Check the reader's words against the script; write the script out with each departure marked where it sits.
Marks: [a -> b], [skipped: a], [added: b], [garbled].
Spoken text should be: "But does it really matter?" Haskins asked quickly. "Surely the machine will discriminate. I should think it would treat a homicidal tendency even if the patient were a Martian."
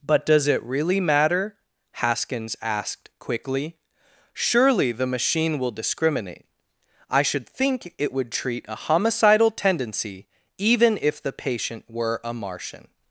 "But does it really matter?" Haskins asked quickly. "Surely the machine will discriminate. I should think it would treat a homicidal tendency even if the patient were a Martian."